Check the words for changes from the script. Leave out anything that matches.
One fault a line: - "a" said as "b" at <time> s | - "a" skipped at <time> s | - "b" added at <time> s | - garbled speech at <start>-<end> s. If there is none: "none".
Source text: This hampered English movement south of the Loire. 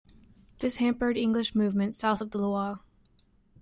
none